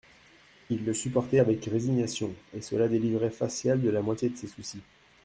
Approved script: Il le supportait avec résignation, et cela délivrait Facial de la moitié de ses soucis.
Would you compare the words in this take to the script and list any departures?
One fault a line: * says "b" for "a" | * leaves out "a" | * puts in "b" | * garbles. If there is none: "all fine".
all fine